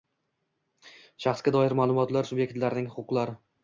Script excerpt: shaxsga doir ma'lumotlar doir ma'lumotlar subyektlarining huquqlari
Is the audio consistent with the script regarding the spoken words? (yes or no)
no